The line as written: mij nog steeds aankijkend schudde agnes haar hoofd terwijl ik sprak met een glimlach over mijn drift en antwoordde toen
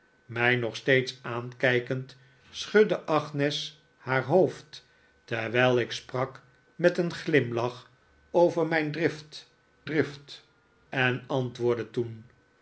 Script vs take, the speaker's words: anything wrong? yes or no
yes